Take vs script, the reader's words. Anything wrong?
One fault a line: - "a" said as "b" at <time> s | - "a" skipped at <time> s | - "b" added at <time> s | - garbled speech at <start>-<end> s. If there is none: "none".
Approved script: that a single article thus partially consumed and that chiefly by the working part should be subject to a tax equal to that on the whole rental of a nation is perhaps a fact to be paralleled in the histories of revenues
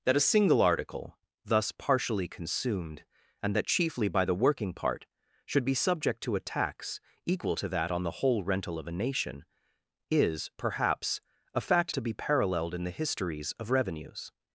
none